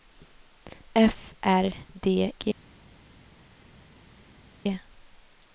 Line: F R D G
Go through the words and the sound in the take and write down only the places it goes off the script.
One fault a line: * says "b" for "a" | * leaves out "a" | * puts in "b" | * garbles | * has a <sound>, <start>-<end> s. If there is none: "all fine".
all fine